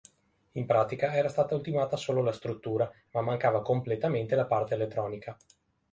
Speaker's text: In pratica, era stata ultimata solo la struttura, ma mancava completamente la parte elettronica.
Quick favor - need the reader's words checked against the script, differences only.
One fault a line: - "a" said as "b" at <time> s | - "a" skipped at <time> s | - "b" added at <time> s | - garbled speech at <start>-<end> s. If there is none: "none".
none